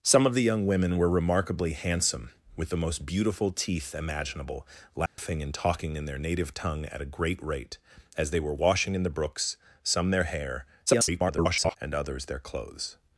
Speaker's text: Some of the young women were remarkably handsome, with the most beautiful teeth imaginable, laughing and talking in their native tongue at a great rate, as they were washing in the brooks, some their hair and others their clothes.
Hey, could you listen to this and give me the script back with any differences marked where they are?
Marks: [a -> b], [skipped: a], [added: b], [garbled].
Some of the young women were remarkably handsome, with the most beautiful teeth imaginable, laughing and talking in their native tongue at a great rate, as they were washing in the brooks, some their hair [garbled] and others their clothes.